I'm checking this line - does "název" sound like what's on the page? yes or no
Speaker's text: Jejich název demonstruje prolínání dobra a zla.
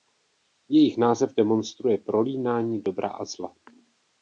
yes